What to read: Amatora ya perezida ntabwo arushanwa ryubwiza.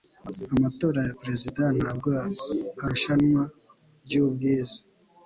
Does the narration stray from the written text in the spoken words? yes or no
no